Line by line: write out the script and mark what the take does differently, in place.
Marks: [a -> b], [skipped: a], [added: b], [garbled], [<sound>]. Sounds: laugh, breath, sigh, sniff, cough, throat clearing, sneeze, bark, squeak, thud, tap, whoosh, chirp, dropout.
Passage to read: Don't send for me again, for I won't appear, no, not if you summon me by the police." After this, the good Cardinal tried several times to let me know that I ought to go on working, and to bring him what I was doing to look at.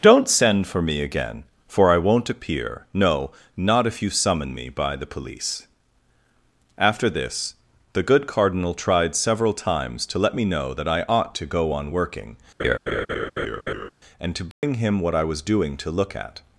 Don't send for me again, for I won't appear, no, not if you summon me by the police." After this, the good Cardinal tried several times to let me know that I ought to go on working, [laugh] and to bring [dropout] him what I was doing to look at.